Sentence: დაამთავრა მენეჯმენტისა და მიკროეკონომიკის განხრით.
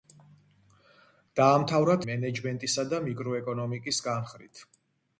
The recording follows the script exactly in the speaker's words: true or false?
true